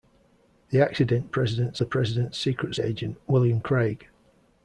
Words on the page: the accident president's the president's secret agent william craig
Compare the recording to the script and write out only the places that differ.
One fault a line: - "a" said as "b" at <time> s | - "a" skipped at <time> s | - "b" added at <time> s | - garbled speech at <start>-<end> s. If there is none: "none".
none